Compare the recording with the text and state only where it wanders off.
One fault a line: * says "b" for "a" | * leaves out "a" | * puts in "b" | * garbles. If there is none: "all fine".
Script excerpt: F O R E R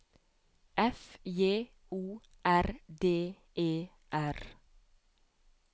* puts in "J"
* puts in "D"